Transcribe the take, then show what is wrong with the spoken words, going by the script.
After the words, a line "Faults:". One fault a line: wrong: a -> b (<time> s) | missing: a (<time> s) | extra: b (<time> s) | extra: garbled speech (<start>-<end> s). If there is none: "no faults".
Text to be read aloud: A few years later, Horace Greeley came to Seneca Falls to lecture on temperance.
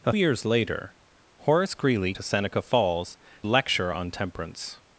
A years later, Horace Greeley to Seneca Falls lecture on temperance.
Faults:
missing: few (0.1 s)
missing: came (2.1 s)
missing: to (3.2 s)